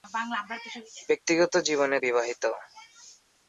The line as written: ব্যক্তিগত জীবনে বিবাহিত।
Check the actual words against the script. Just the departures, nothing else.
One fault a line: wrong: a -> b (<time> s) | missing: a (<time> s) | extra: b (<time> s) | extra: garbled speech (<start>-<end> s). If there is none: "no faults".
no faults